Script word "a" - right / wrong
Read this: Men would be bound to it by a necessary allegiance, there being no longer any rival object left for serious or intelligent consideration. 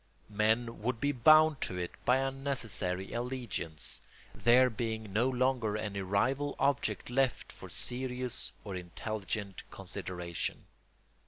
right